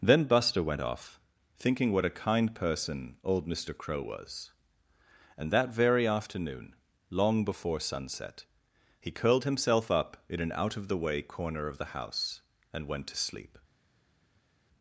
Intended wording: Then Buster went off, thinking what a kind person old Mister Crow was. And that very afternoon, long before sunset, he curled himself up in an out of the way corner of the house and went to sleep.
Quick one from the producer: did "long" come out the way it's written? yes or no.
yes